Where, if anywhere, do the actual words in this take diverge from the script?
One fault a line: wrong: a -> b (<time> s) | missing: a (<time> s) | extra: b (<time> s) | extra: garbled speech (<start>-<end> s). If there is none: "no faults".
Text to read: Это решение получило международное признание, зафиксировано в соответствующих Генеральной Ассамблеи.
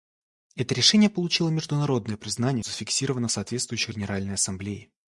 no faults